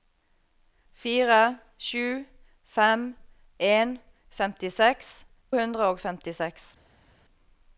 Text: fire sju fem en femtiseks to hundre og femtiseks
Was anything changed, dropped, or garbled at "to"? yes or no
yes